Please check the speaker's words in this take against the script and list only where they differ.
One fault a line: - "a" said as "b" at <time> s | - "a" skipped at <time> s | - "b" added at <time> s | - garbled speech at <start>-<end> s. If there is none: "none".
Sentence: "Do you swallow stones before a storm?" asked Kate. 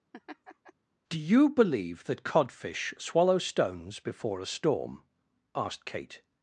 - "believe that codfish" added at 1.5 s